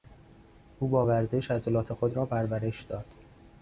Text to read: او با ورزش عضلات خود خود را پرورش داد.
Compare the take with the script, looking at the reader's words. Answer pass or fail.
fail